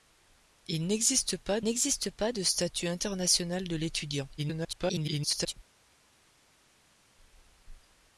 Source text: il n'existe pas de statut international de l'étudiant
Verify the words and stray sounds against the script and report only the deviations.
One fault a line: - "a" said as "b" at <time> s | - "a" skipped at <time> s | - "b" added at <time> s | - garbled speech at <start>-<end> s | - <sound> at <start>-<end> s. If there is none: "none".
- "n'existe pas" added at 1.6 s
- garbled speech at 4.4-5.5 s